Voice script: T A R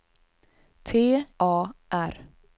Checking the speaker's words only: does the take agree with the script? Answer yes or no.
yes